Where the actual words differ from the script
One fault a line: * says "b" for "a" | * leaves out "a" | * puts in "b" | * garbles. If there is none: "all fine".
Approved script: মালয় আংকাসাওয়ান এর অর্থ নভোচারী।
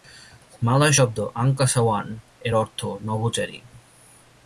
* puts in "শব্দ"